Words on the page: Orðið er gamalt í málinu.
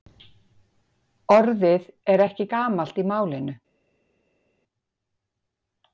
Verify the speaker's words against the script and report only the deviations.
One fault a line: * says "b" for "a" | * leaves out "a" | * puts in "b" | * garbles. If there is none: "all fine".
* puts in "ekki"